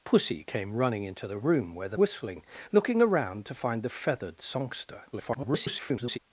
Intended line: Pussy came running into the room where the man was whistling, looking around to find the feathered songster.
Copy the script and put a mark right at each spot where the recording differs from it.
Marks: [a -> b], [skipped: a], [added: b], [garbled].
Pussy came running into the room where the [skipped: man was] whistling, looking around to find the feathered songster. [garbled]